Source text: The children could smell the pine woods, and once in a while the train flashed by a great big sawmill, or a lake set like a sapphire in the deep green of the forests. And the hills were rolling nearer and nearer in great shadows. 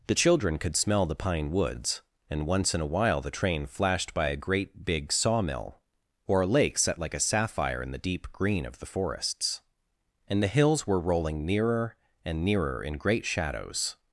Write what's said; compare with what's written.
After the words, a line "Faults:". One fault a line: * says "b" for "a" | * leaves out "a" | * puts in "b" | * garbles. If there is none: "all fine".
The children could smell the pine woods, and once in a while the train flashed by a great big sawmill, or a lake set like a sapphire in the deep green of the forests. And the hills were rolling nearer and nearer in great shadows.
Faults:
all fine